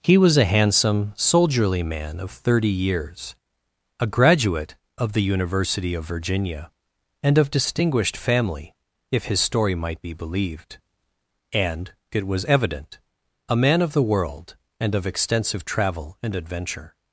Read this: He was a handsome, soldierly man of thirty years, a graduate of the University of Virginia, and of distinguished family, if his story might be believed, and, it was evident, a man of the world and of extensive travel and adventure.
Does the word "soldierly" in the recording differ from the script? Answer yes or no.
no